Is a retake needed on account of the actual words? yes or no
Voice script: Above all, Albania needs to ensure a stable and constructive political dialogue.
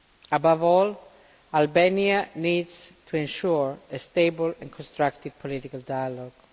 no